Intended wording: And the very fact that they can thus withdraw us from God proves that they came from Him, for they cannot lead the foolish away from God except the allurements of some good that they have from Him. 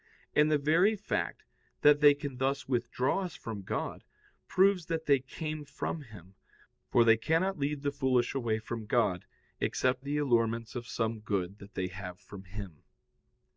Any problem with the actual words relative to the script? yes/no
no